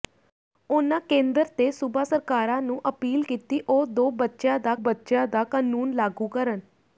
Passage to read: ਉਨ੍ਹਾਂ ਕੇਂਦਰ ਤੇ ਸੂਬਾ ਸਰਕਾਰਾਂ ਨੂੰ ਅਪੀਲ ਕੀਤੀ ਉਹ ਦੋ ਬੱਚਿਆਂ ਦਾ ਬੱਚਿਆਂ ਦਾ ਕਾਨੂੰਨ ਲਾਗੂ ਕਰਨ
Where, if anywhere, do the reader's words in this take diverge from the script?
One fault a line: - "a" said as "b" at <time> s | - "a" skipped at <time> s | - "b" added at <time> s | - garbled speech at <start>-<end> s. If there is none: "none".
none